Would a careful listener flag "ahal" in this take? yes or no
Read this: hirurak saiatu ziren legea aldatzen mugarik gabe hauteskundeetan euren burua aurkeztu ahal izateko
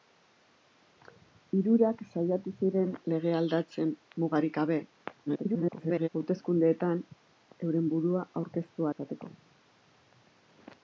yes